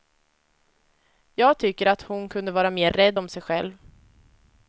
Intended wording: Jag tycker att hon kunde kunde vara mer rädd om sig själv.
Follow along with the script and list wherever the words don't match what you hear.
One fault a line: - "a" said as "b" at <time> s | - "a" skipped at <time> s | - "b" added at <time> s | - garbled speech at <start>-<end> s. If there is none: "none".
- "kunde" skipped at 2.5 s